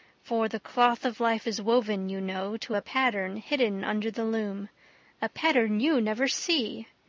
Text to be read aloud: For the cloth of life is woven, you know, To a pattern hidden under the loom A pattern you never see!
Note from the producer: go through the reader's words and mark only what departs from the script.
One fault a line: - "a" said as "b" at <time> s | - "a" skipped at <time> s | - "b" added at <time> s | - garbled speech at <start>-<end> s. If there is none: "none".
none